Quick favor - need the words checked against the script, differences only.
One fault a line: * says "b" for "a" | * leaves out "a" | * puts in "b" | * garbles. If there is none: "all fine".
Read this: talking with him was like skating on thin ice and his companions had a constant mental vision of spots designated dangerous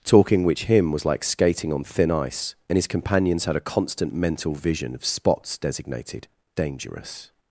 * says "which" for "with"